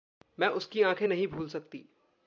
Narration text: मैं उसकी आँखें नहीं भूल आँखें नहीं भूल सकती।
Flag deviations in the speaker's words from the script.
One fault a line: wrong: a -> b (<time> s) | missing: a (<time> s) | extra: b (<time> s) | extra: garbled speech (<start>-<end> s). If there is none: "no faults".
missing: आँखें नहीं भूल (1.5 s)